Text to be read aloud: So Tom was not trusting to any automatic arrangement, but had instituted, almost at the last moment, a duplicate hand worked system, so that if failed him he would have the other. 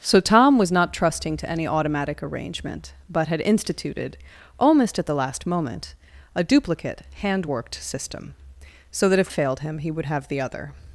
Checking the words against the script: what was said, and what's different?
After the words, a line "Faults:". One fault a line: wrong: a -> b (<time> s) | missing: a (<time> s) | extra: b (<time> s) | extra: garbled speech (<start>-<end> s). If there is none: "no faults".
So Tom was not trusting to any automatic arrangement, but had instituted, almost at the last moment, a duplicate hand worked system, so that if failed him he would have the other.
Faults:
no faults